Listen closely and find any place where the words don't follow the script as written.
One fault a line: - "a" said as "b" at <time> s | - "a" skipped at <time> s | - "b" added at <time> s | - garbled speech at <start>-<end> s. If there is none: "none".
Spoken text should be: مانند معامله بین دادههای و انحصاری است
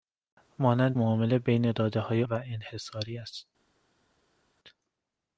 none